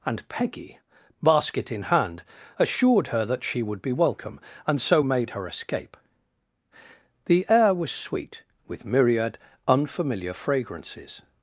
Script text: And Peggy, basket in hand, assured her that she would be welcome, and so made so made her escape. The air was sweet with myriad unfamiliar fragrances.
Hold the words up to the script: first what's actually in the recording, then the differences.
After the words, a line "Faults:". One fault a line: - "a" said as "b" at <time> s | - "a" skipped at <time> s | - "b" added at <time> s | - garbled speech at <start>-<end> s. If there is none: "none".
And Peggy, basket in hand, assured her that she would be welcome, and so made her escape. The air was sweet with myriad unfamiliar fragrances.
Faults:
- "so made" skipped at 5.3 s